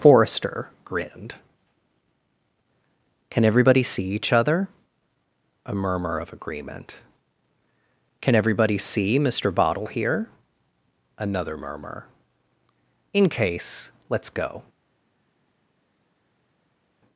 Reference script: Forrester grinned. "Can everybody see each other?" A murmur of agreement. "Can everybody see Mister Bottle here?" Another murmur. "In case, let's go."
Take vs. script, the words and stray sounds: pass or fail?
pass